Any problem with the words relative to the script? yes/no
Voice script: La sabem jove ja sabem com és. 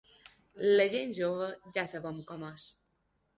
yes